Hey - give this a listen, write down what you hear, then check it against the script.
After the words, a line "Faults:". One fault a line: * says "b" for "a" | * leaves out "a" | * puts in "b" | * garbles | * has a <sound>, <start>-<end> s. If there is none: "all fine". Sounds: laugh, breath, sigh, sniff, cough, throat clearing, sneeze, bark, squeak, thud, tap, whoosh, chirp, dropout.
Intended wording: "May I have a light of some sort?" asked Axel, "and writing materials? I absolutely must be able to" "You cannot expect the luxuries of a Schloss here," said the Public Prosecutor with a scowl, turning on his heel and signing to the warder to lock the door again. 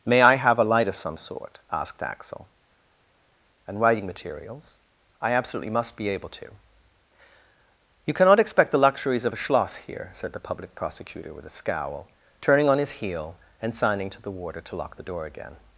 "May I have a light of some sort?" asked Axel, "and writing materials? I absolutely must be able to" "You cannot expect the luxuries of a Schloss here," said the Public Prosecutor with a scowl, turning on his heel and signing to the warder to lock the door again.
Faults:
all fine